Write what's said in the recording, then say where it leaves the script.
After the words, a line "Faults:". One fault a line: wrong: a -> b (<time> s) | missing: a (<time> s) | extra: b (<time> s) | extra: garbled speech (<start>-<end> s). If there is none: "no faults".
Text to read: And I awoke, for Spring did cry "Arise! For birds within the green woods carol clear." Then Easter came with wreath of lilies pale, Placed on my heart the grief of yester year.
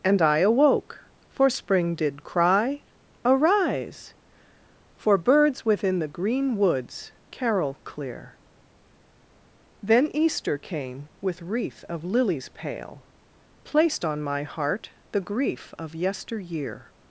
And I awoke, for Spring did cry "Arise! For birds within the green woods carol clear." Then Easter came with wreath of lilies pale, Placed on my heart the grief of yester year.
Faults:
no faults